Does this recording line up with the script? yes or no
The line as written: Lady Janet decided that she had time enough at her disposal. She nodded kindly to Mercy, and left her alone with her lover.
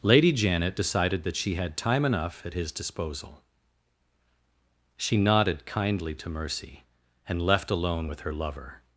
no